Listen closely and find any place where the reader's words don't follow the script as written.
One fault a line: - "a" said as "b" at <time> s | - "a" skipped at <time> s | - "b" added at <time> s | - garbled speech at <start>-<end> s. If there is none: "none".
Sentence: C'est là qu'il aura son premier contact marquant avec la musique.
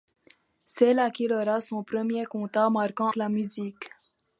- "avec" skipped at 3.1 s